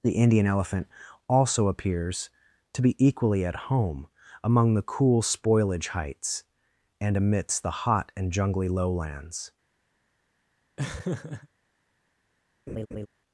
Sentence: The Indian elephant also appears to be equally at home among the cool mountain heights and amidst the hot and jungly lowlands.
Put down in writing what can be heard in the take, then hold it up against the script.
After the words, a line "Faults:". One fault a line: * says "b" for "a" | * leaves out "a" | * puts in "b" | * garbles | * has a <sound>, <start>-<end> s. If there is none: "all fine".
The Indian elephant also appears to be equally at home among the cool spoilage heights and amidst the hot and jungly lowlands.
Faults:
* says "spoilage" for "mountain"
* has a laugh, 10.8-11.5 s
* has a laugh, 12.7-13.1 s